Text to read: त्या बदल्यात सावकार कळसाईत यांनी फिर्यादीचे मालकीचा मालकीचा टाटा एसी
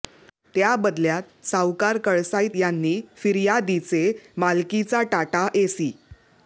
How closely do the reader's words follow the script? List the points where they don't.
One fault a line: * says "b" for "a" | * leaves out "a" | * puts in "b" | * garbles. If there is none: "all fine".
* leaves out "मालकीचा"